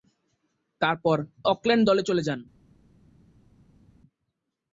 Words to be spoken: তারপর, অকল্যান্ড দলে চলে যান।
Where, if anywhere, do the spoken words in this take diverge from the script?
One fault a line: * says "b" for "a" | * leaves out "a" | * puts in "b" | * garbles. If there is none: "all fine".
all fine